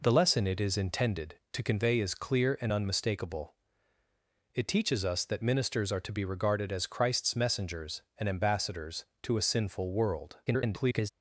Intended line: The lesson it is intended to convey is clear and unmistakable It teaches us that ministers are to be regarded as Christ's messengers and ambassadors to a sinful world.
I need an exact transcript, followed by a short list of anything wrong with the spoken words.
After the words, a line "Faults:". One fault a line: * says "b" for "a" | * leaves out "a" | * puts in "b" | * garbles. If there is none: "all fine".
The lesson it is intended to convey is clear and unmistakable It teaches us that ministers are to be regarded as Christ's messengers and ambassadors to a sinful world. [garbled]
Faults:
* garbles